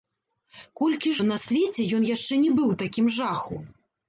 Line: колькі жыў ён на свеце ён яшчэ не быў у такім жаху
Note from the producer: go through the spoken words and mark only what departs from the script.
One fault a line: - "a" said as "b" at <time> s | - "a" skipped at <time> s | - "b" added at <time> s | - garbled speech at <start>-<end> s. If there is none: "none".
- "жыў" skipped at 1.1 s